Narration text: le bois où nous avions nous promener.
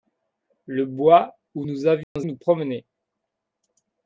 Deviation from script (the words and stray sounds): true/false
true